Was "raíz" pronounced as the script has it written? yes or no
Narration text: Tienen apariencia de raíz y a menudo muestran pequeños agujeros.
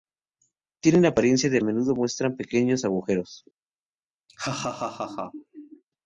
no